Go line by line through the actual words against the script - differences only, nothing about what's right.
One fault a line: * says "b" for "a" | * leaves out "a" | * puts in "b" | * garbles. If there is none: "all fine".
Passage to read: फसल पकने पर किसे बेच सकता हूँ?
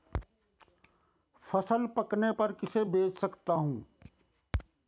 all fine